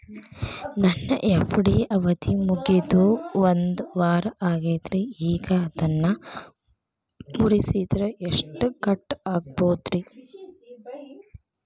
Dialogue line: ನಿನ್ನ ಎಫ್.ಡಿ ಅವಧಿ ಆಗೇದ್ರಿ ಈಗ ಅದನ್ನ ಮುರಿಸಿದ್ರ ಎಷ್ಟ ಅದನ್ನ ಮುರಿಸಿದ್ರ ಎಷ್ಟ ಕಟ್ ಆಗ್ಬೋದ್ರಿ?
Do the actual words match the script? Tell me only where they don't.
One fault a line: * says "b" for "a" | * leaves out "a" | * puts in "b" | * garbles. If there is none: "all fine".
* says "ನನ್ನ" for "ನಿನ್ನ"
* puts in "ಮುಗಿದು ಒಂದವಾರ"
* leaves out "ಅದನ್ನ ಮುರಿಸಿದ್ರ ಎಷ್ಟ"